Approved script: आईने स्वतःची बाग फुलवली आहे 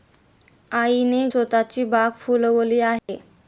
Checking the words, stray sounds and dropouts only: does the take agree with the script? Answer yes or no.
no